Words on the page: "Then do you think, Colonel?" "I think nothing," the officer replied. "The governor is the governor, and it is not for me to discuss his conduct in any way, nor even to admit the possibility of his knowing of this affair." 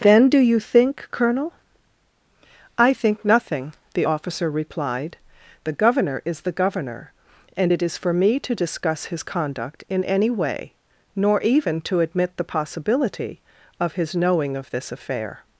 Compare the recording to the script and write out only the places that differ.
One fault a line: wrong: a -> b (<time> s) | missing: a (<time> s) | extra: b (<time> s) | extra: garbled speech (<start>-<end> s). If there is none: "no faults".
missing: not (8.0 s)